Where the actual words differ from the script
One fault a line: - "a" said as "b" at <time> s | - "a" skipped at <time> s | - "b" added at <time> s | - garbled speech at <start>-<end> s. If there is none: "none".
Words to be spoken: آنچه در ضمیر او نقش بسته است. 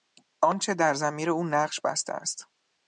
none